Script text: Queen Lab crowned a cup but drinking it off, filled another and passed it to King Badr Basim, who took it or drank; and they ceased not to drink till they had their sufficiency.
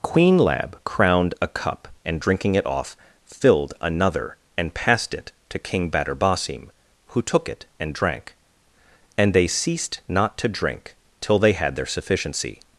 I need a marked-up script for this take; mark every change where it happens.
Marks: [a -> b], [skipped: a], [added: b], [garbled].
Queen Lab crowned a cup [but -> and] drinking it off, filled another and passed it to King Badr Basim, who took it [or -> and] drank; and they ceased not to drink till they had their sufficiency.